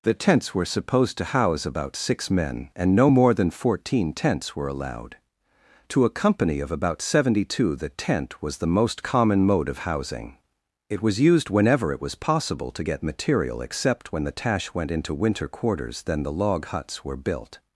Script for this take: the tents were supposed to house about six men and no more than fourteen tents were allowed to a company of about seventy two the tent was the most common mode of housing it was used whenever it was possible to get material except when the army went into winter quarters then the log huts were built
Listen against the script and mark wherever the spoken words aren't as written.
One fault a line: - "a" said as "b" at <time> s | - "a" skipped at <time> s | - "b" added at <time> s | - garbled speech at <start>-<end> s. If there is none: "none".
- "army" said as "tash" at 14.3 s